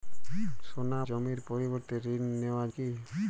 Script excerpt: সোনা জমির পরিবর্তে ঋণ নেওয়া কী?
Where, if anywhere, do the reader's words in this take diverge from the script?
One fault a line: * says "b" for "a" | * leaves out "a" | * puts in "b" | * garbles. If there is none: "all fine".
all fine